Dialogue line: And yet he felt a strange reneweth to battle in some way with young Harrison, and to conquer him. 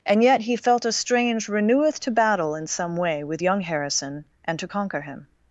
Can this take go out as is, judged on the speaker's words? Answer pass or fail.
pass